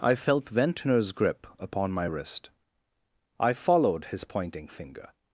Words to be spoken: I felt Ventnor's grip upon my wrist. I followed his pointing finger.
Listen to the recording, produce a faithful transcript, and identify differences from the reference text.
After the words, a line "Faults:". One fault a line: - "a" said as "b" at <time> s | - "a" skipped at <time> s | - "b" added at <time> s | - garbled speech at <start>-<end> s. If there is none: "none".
I felt Ventnor's grip upon my wrist. I followed his pointing finger.
Faults:
none